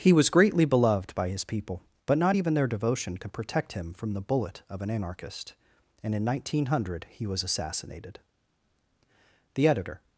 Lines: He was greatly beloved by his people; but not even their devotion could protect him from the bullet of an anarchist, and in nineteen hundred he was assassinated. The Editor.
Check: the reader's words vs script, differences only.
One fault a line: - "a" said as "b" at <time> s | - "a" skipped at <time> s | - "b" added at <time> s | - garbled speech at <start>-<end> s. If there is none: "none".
none